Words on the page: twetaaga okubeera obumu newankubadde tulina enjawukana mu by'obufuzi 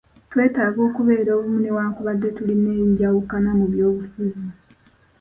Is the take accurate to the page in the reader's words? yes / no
yes